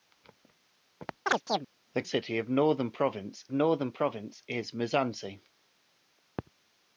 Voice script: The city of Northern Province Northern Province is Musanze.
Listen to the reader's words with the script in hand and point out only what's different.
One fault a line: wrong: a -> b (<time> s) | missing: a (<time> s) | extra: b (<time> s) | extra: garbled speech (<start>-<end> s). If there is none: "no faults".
no faults